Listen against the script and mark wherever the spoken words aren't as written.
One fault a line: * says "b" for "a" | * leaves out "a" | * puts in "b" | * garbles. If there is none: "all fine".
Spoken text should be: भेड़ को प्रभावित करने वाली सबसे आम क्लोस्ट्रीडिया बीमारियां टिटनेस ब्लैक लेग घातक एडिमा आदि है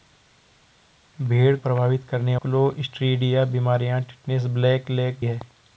* leaves out "को"
* leaves out "वाली सबसे आम"
* leaves out "घातक एडिमा आदि"